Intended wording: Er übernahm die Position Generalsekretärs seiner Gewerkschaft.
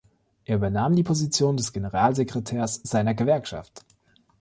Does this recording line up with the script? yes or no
no